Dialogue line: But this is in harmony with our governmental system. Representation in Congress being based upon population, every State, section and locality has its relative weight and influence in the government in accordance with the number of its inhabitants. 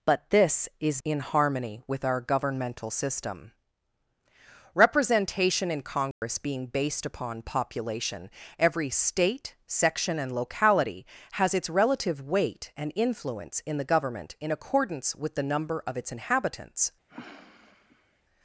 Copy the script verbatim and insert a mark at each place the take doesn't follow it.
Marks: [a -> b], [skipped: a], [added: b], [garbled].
But this is in harmony with our governmental system. Representation in Congress being based upon population, every State, section and locality has its relative weight and influence in the government in accordance with the number of its inhabitants.